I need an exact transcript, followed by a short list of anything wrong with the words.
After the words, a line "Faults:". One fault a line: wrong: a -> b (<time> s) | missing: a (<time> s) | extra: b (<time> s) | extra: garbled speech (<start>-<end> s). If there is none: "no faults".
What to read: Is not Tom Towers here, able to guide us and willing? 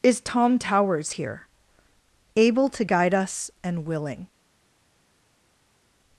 Is Tom Towers here, able to guide us and willing?
Faults:
missing: not (0.2 s)